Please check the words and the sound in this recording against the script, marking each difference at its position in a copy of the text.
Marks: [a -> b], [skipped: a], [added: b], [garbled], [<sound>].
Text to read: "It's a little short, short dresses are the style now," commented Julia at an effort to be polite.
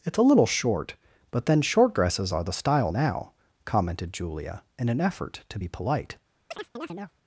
"It's a little short, [added: but then] short dresses are the style now," commented Julia [at -> in] an effort to be polite. [chirp]